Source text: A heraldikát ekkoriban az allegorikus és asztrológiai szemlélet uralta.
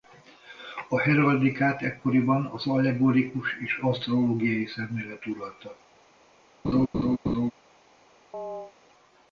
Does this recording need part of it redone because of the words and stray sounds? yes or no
yes